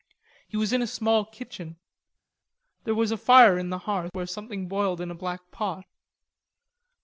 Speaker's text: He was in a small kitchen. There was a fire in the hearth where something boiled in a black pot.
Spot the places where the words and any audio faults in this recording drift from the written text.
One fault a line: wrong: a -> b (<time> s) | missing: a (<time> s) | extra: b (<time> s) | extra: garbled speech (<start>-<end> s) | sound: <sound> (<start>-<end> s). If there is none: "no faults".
no faults